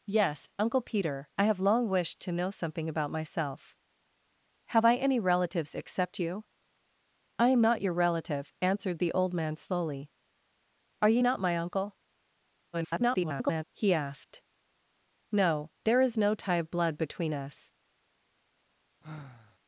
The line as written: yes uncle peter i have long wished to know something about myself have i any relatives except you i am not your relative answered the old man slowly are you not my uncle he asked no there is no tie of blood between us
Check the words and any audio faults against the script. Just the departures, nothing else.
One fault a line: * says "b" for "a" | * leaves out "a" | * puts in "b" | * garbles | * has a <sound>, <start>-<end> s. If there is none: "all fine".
* garbles
* has a sigh, 19.0-19.6 s